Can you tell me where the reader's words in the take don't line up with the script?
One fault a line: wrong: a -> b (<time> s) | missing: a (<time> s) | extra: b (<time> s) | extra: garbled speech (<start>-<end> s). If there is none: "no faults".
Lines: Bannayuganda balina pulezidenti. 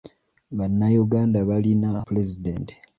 no faults